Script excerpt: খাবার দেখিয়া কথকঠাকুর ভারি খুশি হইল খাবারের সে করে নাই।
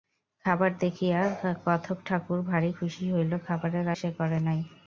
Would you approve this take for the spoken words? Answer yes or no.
yes